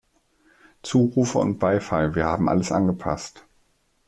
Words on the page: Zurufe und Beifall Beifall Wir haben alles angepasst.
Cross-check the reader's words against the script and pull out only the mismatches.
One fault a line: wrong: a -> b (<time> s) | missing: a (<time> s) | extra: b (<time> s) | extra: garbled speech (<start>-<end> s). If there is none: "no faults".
missing: Beifall (2.1 s)